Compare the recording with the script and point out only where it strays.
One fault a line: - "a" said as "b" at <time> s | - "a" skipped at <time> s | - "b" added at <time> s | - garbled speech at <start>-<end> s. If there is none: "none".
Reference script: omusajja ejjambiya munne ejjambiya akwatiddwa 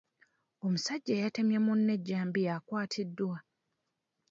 - "ejjambiya" said as "eyatemye" at 1.2 s